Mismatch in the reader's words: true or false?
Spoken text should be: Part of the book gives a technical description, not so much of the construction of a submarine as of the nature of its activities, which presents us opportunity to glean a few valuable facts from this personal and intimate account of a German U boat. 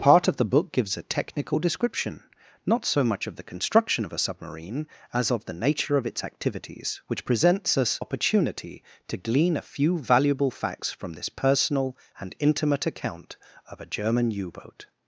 false